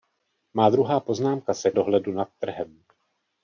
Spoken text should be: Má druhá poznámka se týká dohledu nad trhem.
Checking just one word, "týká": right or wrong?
wrong